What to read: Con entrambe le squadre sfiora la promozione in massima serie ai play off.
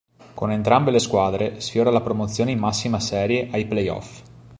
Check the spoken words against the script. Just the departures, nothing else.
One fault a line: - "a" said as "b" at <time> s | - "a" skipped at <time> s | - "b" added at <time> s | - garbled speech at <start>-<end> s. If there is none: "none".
none